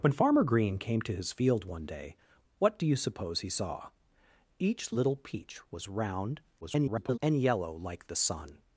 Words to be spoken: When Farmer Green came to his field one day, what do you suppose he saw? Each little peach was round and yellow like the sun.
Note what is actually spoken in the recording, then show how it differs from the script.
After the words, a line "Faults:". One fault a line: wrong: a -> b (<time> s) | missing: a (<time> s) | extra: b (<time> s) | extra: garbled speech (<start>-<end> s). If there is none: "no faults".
When Farmer Green came to his field one day, what do you suppose he saw? Each little peach was round [garbled] and yellow like the sun.
Faults:
extra: garbled speech (6.6-7.2 s)